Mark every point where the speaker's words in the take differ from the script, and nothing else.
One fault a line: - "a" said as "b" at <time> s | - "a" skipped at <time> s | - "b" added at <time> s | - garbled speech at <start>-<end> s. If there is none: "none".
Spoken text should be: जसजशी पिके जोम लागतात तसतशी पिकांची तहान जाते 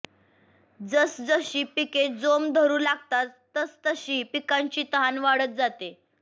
- "धरू" added at 2.5 s
- "वाढत" added at 5.2 s